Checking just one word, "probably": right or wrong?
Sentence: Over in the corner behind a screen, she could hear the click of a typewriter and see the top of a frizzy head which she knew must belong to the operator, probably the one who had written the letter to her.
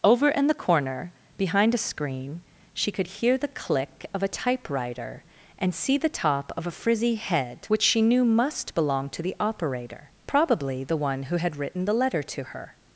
right